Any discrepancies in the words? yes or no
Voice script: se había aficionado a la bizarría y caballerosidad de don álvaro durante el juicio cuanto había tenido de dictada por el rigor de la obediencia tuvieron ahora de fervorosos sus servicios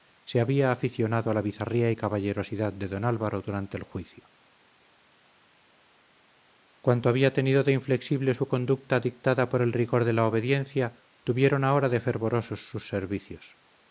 yes